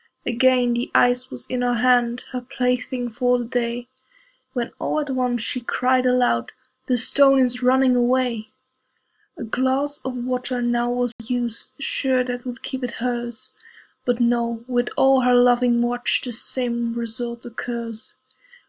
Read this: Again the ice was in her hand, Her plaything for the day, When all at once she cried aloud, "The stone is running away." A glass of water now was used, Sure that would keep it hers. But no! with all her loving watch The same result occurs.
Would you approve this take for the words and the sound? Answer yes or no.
no